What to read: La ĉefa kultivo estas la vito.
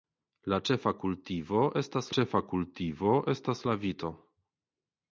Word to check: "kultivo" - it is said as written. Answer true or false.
true